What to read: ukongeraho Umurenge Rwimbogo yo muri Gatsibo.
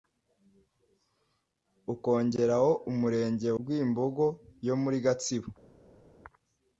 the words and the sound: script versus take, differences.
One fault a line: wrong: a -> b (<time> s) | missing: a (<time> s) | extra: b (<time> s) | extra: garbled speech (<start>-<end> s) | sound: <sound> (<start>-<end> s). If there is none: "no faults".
no faults